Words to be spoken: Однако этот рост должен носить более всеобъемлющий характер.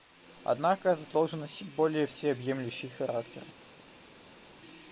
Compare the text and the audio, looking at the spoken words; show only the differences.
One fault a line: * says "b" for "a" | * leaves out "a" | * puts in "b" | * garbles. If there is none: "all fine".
* leaves out "рост"